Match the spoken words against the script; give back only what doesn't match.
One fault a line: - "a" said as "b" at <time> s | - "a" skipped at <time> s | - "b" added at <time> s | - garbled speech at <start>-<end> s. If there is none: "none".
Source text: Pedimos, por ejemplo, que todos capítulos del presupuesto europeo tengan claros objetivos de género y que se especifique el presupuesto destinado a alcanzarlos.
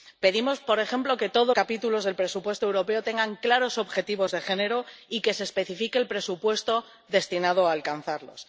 none